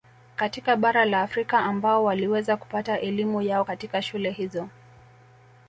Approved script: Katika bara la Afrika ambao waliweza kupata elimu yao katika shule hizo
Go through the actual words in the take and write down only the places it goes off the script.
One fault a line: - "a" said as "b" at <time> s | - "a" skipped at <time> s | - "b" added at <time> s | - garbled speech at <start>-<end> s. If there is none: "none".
none